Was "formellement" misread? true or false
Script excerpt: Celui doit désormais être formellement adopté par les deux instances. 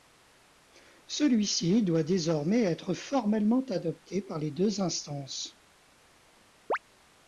false